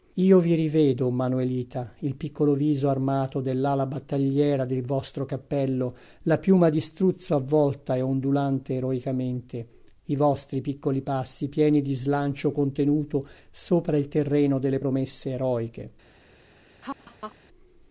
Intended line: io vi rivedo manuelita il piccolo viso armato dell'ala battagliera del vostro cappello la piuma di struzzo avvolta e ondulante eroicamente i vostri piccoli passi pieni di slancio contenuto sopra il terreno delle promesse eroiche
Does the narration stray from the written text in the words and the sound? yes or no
yes